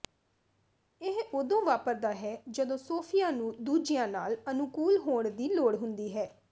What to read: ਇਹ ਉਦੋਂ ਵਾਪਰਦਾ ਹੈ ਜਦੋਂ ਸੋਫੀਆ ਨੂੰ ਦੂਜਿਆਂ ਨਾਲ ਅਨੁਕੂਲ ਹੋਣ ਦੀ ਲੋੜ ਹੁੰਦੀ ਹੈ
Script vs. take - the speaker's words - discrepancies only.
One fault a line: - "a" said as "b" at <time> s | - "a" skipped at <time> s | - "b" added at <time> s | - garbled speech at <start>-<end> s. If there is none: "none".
none